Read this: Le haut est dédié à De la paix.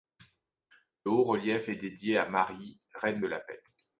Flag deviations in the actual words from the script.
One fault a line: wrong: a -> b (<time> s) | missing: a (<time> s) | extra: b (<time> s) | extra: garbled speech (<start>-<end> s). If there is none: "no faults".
extra: relief (1.2 s)
extra: Marie reine (2.3 s)